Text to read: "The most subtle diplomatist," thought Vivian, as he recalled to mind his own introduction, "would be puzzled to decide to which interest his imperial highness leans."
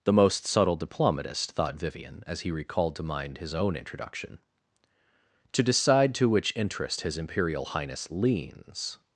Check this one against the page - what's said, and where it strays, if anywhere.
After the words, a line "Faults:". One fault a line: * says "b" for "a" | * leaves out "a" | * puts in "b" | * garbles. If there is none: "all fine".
"The most subtle diplomatist," thought Vivian, as he recalled to mind his own introduction, "to decide to which interest his imperial highness leans."
Faults:
* leaves out "would be puzzled"